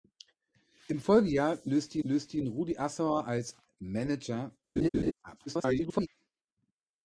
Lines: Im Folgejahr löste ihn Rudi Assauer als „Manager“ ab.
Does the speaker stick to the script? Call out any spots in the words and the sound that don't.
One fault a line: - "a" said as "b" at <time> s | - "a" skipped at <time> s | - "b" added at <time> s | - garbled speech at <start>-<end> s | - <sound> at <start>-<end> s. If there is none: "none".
- "löste" added at 2.0 s
- laugh at 4.8-5.1 s
- garbled speech at 5.5-6.1 s